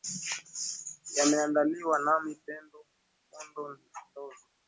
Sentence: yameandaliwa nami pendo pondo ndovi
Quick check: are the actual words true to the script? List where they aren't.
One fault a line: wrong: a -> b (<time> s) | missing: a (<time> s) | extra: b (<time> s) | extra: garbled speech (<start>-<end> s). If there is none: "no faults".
no faults